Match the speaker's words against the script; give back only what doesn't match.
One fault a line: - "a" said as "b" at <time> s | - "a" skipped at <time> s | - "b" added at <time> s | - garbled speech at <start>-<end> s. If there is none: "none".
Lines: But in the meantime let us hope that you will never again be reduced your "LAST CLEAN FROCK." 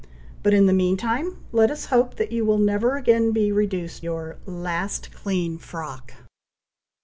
none